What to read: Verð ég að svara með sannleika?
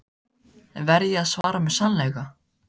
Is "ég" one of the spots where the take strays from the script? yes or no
no